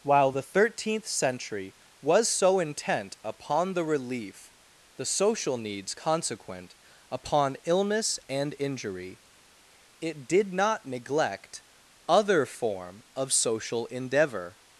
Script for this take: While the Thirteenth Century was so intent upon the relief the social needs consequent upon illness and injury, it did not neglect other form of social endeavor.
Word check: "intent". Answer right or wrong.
right